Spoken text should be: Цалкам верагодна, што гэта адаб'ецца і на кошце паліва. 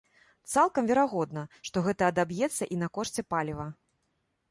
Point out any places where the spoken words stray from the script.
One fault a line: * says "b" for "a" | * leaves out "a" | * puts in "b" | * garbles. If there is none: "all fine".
all fine